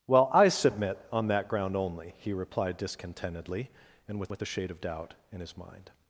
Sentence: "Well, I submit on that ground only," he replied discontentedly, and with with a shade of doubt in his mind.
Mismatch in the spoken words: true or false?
false